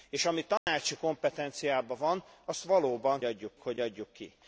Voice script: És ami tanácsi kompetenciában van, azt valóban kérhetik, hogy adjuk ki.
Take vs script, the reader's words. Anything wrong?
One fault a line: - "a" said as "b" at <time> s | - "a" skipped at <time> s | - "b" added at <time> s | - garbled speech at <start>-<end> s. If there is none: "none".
- "kérhetik" said as "adjuk" at 3.2 s